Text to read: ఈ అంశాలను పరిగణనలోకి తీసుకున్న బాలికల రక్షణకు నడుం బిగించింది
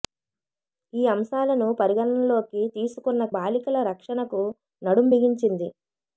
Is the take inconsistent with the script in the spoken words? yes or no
no